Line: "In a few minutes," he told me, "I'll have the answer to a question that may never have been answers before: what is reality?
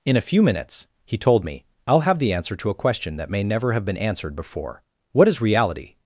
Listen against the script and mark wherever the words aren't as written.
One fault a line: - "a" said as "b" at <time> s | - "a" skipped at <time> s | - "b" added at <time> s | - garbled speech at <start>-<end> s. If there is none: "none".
- "answers" said as "answered" at 4.0 s